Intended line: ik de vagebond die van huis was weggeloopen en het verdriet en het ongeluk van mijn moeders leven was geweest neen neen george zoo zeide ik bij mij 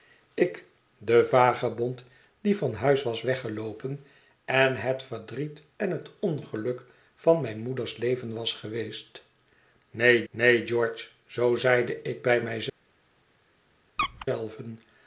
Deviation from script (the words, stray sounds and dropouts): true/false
true